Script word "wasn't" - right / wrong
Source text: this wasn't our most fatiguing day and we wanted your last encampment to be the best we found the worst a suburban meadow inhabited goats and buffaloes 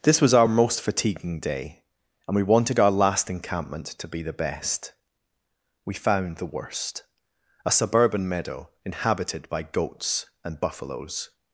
wrong